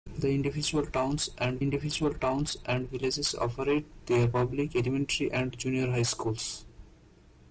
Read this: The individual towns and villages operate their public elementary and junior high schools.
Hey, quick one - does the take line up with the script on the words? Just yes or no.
no